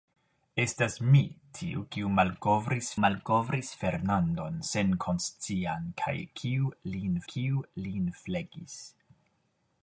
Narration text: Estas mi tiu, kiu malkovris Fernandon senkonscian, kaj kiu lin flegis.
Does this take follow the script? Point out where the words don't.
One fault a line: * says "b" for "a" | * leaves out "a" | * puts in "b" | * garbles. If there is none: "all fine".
* puts in "malkovris"
* puts in "kiu lin"